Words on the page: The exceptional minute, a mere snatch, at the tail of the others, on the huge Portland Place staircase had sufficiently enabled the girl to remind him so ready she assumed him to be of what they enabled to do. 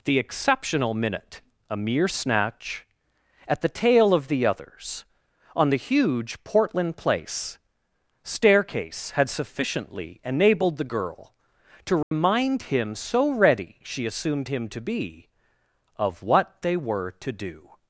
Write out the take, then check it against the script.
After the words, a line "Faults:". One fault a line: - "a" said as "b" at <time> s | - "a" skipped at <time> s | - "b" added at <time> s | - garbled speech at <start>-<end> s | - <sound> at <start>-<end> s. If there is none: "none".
The exceptional minute, a mere snatch, at the tail of the others, on the huge Portland Place staircase had sufficiently enabled the girl to remind him so ready she assumed him to be of what they were to do.
Faults:
- dropout at 12.0-12.1 s
- "enabled" said as "were" at 16.8 s